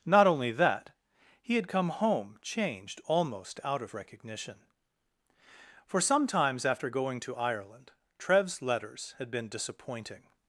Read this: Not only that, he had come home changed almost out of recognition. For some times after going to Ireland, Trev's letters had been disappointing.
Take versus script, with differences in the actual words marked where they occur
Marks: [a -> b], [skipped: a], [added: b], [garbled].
Not only that, he had come home changed almost out of recognition. For some times after going to Ireland, Trev's letters had been disappointing.